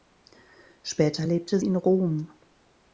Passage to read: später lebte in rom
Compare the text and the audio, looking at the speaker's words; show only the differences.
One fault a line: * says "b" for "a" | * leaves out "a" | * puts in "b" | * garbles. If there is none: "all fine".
all fine